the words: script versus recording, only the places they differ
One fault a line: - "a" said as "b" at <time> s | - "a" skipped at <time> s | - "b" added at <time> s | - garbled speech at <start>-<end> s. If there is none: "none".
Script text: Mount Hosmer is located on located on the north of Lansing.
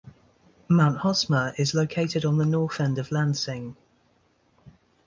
- "located on" skipped at 2.4 s
- "end" added at 2.8 s